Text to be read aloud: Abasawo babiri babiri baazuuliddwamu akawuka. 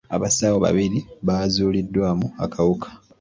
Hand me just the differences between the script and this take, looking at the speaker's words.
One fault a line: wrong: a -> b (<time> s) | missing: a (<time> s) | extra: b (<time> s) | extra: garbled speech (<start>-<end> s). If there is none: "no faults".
missing: babiri (1.0 s)